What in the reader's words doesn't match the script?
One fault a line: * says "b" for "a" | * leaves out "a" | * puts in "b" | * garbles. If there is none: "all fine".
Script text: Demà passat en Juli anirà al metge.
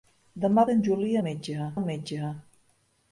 * leaves out "passat"
* says "metge" for "anirà"